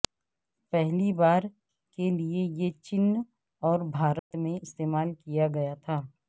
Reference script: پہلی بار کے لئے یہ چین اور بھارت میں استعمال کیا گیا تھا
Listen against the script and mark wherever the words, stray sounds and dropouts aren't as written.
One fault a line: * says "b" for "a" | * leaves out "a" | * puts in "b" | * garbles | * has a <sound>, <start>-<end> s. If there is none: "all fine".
* has a dropout, 4.2-4.3 s